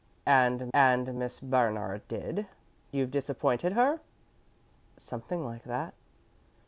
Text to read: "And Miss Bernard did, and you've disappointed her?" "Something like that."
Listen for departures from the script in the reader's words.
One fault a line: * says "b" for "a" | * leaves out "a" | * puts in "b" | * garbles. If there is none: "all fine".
* puts in "and"
* leaves out "and"